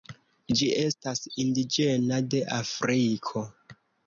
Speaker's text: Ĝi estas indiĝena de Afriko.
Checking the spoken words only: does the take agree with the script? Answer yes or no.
yes